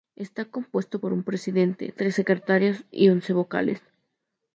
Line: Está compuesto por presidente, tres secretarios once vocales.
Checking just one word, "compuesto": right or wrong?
right